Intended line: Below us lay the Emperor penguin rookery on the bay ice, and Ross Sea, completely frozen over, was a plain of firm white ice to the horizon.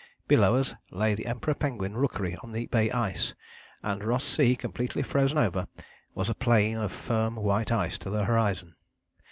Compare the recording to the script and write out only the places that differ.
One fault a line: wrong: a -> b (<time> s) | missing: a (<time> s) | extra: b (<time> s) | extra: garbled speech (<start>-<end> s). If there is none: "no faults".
no faults